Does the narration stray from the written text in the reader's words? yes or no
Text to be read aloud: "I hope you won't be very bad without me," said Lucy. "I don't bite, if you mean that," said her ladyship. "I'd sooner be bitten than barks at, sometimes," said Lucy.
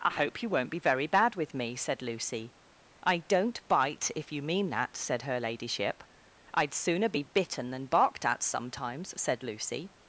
yes